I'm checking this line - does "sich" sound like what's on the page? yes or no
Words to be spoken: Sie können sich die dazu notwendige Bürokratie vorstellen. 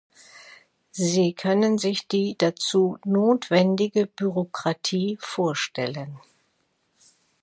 yes